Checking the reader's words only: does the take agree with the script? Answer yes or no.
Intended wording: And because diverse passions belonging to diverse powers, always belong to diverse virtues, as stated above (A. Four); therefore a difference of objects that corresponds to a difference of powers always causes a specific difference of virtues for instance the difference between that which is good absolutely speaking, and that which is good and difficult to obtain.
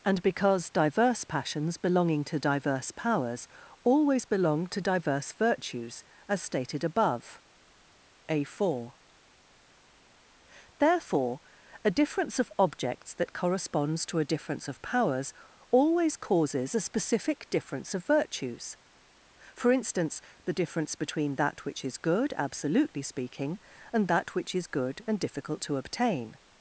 yes